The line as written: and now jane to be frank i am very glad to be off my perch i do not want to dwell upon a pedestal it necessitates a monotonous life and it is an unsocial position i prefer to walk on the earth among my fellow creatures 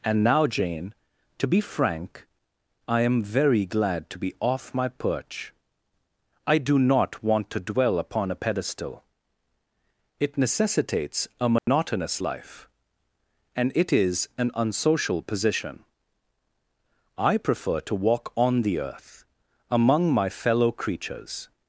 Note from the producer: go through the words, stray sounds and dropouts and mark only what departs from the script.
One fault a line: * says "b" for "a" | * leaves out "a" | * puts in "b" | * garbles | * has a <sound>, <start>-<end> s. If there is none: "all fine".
* has a dropout, 11.6-11.7 s